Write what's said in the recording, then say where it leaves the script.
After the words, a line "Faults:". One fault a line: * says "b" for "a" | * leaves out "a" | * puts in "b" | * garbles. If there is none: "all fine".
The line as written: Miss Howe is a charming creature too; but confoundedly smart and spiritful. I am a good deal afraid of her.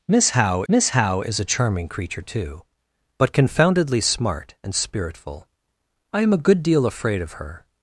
Miss Howe miss Howe is a charming creature too; but confoundedly smart and spiritful. I am a good deal afraid of her.
Faults:
* puts in "miss Howe"